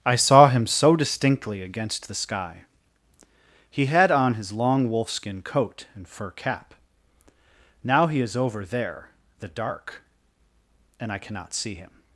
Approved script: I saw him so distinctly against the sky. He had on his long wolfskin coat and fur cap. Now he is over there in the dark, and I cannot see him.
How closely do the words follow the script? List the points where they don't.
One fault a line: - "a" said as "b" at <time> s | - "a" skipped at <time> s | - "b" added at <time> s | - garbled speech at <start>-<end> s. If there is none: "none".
- "in" skipped at 9.1 s